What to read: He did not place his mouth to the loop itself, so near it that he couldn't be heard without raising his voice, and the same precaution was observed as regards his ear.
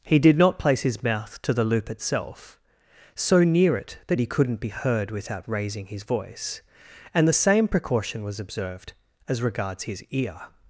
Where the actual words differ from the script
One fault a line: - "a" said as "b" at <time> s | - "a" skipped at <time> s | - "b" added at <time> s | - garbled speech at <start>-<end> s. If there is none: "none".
none